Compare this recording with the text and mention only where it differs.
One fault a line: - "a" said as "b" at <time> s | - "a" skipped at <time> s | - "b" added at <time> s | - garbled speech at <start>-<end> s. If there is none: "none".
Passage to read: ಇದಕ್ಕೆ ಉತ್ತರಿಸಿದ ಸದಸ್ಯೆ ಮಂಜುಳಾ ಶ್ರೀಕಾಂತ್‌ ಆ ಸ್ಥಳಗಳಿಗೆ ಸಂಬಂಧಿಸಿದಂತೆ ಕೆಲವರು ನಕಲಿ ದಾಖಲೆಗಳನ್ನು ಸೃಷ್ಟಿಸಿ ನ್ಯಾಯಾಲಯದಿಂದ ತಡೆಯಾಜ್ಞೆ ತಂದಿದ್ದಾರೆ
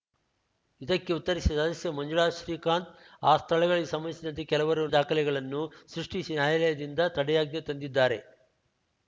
- "ನಕಲಿ" skipped at 4.8 s